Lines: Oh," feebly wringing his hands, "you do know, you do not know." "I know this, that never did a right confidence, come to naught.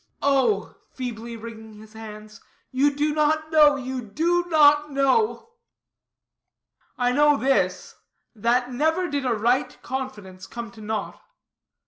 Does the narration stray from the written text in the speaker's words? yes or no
yes